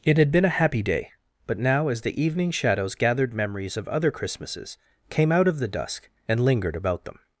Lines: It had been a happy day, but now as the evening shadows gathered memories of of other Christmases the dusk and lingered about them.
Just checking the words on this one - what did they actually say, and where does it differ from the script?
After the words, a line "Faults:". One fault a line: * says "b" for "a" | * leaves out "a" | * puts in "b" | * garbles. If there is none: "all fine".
It had been a happy day, but now as the evening shadows gathered memories of other Christmases came out of the dusk and lingered about them.
Faults:
* leaves out "of"
* puts in "came out of"